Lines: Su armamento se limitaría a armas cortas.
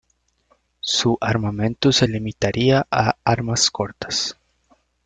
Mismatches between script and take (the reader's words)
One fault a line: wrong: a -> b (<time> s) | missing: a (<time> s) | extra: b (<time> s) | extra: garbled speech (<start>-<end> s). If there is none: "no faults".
no faults